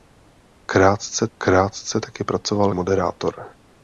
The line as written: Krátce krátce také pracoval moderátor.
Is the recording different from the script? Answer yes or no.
no